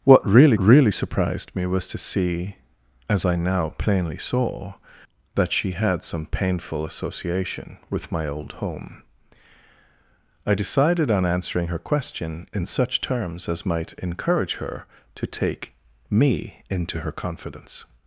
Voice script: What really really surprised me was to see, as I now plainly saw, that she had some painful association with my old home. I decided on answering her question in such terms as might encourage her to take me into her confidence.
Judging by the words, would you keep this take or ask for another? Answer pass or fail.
pass